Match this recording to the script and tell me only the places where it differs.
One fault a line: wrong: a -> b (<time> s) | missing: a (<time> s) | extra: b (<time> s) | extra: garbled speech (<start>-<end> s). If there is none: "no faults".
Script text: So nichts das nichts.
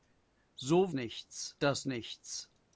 no faults